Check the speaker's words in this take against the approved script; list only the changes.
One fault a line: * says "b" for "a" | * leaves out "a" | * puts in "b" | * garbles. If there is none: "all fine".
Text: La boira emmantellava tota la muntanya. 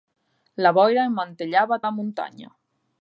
* leaves out "tota"